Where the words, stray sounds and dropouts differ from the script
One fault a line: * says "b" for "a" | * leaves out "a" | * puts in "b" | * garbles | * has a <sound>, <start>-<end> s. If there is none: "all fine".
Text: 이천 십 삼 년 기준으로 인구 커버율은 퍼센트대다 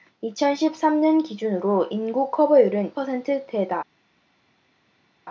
all fine